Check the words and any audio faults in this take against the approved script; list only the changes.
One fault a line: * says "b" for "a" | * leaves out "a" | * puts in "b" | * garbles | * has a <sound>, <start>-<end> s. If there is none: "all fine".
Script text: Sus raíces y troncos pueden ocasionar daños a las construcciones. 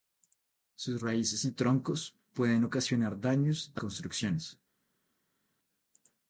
* leaves out "las"